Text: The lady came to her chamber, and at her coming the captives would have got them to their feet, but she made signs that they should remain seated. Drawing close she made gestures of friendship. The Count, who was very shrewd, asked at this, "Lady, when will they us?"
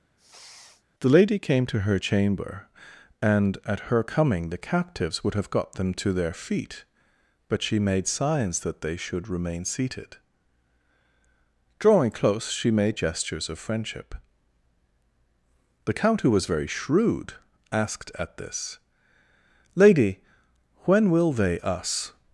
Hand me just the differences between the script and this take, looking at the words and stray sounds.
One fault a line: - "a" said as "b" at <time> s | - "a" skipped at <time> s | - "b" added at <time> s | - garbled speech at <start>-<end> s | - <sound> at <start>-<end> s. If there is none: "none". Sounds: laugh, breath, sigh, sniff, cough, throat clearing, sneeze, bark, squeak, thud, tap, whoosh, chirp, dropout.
- sniff at 0.2-0.8 s